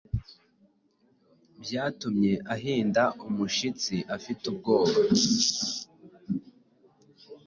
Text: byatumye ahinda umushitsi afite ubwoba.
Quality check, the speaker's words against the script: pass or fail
pass